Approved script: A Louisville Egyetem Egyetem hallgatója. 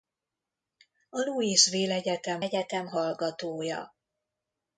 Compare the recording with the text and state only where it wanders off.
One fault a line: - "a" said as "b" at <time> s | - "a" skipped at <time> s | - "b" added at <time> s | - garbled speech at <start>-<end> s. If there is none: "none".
none